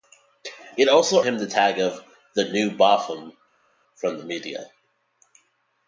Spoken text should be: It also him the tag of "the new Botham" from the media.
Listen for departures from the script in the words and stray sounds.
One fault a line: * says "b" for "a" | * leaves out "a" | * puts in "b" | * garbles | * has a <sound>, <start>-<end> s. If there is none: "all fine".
all fine